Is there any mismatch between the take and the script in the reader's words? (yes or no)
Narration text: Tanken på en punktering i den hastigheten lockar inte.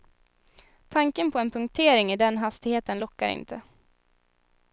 no